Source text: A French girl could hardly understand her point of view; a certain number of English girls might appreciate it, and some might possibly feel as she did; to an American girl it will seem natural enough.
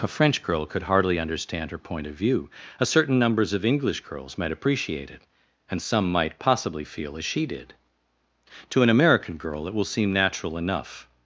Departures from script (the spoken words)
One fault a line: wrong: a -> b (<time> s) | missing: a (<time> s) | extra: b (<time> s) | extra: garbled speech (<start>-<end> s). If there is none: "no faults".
wrong: number -> numbers (3.2 s)